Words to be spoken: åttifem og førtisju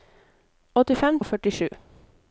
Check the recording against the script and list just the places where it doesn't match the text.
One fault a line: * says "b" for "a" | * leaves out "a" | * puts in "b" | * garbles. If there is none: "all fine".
all fine